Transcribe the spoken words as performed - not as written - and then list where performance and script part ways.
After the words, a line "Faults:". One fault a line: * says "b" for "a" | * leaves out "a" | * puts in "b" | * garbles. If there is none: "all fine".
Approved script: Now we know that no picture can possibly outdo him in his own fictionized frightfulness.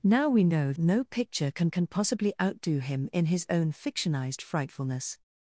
Now we know no picture can can possibly outdo him in his own fictionized frightfulness.
Faults:
* leaves out "that"
* puts in "can"